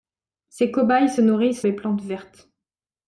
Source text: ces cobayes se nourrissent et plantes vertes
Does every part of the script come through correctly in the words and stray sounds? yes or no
yes